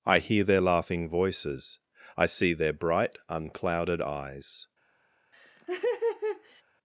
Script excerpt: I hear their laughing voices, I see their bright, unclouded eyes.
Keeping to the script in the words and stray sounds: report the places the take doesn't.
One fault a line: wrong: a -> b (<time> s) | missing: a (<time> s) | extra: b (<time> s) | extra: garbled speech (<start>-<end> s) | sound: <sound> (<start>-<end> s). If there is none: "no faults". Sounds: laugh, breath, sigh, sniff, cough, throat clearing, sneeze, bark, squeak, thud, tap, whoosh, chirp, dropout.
sound: laugh (5.3-6.6 s)